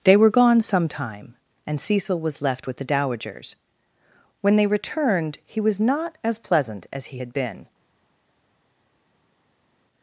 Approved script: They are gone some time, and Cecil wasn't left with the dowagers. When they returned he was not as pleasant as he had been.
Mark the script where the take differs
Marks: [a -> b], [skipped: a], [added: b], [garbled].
They [are -> were] gone some time, and Cecil [wasn't -> was] left with the dowagers. When they returned he was not as pleasant as he had been.